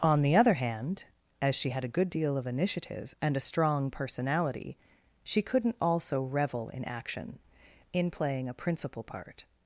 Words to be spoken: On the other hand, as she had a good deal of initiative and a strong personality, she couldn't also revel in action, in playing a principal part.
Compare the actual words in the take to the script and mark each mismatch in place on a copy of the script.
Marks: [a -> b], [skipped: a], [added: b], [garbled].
On the other hand, as she had a good deal of initiative and a strong personality, she couldn't also revel in action, in playing a principal part.